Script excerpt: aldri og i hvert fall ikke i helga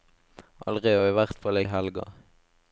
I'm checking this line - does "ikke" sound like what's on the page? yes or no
no